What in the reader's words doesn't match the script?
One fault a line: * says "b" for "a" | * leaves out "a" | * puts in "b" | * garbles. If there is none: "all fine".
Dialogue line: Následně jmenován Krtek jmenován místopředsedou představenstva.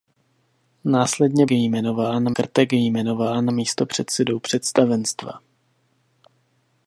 all fine